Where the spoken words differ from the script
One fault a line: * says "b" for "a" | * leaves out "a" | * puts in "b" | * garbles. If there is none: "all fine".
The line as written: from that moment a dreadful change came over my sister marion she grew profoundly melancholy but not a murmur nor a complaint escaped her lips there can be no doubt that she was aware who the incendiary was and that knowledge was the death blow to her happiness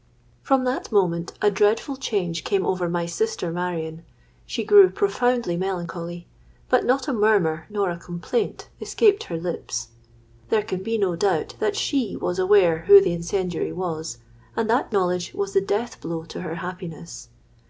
all fine